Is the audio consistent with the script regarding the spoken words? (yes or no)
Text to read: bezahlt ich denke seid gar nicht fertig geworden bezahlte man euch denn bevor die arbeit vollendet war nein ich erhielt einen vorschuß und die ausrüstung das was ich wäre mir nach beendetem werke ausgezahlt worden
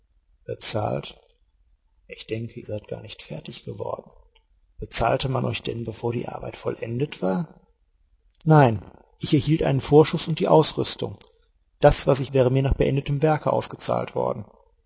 yes